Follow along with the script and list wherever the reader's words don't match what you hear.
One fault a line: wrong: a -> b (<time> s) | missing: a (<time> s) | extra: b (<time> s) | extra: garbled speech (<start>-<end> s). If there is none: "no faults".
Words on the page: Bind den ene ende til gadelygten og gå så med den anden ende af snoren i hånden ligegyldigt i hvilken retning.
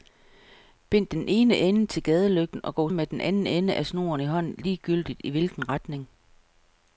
missing: så (2.9 s)